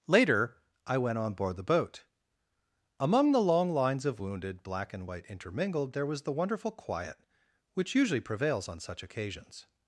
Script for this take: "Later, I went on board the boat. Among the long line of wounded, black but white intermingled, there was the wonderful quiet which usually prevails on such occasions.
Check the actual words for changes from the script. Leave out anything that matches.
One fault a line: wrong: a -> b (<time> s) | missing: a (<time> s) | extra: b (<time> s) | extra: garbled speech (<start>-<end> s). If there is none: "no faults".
wrong: line -> lines (3.7 s)
wrong: but -> and (4.9 s)